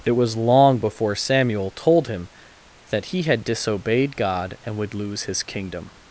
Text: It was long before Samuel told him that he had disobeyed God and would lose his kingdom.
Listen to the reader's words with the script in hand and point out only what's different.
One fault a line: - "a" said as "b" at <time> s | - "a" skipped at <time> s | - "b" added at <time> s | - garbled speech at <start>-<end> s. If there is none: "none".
none